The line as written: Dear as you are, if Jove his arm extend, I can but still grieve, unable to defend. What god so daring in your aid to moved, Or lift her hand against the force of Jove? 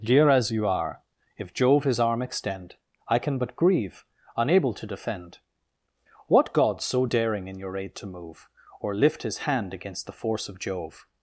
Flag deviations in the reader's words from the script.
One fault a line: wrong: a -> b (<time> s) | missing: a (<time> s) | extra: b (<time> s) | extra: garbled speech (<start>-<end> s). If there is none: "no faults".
missing: still (3.5 s)
wrong: moved -> move (8.1 s)
wrong: her -> his (9.2 s)